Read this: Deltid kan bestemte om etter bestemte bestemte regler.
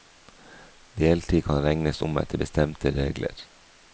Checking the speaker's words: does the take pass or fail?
fail